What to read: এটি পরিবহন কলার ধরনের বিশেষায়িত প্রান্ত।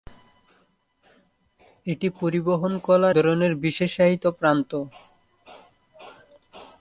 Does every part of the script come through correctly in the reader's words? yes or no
yes